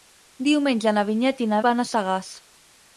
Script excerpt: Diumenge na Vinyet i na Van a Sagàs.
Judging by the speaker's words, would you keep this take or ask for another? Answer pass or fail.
pass